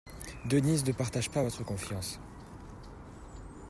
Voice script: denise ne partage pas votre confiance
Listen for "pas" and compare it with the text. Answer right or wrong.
right